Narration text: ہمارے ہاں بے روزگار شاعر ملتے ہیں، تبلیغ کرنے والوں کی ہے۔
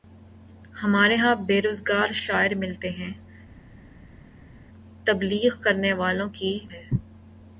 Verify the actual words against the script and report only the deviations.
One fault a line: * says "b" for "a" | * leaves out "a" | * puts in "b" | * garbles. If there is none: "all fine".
all fine